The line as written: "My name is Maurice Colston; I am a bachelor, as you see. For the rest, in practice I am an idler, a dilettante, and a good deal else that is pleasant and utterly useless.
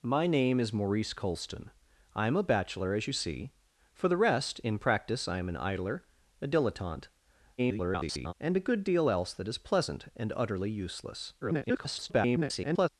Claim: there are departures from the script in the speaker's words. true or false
true